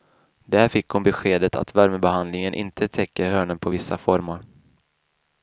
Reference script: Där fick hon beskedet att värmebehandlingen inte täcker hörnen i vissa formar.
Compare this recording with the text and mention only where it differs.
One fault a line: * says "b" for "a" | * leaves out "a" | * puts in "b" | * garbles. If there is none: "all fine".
* says "på" for "i"